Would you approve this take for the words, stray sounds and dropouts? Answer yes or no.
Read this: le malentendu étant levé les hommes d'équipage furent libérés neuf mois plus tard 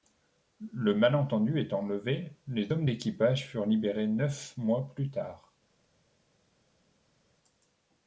yes